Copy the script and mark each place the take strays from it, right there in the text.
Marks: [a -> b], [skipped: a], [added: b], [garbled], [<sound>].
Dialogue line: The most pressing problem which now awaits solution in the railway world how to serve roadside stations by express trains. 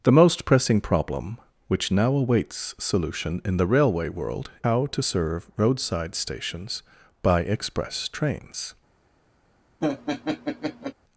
The most pressing problem which now awaits solution in the railway world how to serve roadside stations by express trains. [laugh]